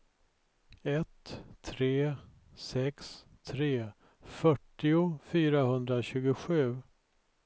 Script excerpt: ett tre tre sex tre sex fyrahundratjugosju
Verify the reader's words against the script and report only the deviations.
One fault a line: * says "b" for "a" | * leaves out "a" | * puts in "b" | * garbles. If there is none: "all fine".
* leaves out "tre"
* says "fyrtio" for "sex"